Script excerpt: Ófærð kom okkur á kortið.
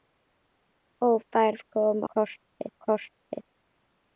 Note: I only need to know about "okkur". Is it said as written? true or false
false